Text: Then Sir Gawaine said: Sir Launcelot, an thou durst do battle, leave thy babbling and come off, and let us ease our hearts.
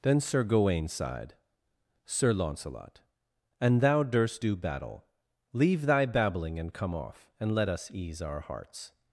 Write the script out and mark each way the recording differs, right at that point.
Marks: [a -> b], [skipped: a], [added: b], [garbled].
Then Sir Gawaine [said: -> sighed] Sir Launcelot, an thou durst do battle, leave thy babbling and come off, and let us ease our hearts.